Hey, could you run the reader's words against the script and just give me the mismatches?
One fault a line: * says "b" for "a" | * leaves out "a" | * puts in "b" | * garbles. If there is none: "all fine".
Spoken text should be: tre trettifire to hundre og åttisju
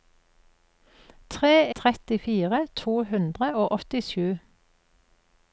all fine